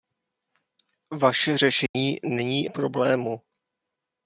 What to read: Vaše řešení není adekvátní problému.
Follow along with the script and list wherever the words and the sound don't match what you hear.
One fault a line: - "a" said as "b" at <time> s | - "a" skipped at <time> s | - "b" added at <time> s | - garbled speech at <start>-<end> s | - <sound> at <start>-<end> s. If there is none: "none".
- dropout at 1.9-1.9 s
- "adekvátní" skipped at 2.7 s